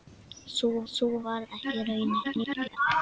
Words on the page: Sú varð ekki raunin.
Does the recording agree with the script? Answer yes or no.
no